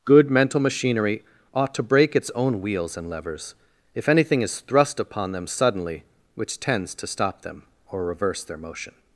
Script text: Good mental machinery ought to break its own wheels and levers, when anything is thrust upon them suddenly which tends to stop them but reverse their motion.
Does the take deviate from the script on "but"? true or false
true